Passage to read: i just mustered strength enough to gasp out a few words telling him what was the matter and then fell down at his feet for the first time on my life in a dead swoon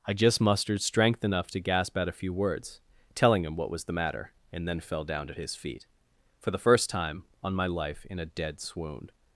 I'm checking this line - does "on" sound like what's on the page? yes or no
yes